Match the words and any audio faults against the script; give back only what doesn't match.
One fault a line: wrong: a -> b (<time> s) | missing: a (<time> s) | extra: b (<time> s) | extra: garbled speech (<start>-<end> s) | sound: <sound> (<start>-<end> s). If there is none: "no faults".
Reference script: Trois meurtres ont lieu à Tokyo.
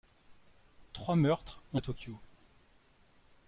missing: lieu (1.8 s)